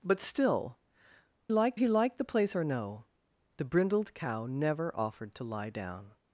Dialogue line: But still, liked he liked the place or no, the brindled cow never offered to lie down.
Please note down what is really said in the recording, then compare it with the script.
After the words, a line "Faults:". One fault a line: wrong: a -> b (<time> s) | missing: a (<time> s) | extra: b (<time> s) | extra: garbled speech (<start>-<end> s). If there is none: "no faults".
But still, liked he liked the place or no, the brindled cow never offered to lie down.
Faults:
no faults